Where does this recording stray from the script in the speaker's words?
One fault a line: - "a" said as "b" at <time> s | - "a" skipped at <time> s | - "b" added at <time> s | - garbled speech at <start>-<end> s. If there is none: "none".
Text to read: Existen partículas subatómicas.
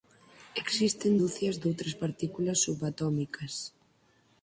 - "ducias doutras" added at 1.2 s